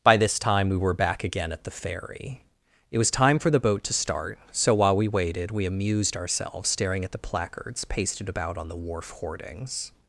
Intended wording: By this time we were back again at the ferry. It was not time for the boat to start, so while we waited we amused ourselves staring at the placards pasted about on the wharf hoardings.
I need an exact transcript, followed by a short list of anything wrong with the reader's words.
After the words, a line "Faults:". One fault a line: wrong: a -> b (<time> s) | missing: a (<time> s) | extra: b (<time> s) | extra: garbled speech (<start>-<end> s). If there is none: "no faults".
By this time we were back again at the ferry. It was time for the boat to start, so while we waited we amused ourselves staring at the placards pasted about on the wharf hoardings.
Faults:
missing: not (3.1 s)